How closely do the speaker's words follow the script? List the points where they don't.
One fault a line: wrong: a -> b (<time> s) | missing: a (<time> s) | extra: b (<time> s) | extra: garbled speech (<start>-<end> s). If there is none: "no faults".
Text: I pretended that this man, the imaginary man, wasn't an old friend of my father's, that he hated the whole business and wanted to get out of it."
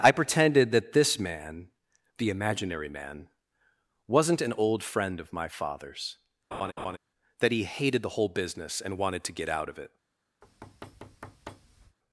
no faults